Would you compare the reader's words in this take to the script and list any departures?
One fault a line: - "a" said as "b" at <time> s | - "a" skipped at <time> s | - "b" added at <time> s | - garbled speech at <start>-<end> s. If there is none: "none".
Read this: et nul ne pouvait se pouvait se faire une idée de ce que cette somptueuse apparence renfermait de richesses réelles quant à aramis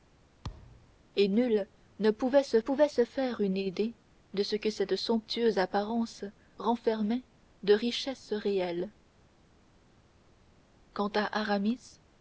none